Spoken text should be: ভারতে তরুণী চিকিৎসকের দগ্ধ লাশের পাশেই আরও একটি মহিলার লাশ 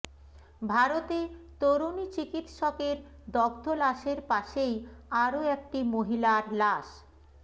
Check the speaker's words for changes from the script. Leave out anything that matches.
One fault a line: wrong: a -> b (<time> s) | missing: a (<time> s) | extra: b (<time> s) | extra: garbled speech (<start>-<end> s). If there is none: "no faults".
no faults